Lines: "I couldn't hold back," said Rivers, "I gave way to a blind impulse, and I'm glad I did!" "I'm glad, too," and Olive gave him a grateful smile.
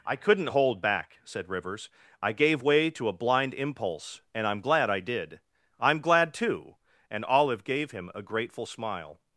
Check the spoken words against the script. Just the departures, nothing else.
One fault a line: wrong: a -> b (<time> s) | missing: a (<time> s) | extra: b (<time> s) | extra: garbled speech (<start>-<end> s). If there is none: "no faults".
no faults